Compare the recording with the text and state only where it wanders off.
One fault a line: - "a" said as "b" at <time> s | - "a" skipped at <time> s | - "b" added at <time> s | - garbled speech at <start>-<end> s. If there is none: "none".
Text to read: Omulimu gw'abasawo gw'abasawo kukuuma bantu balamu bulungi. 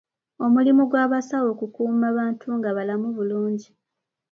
- "gw'abasawo" skipped at 1.5 s
- "nga" added at 2.6 s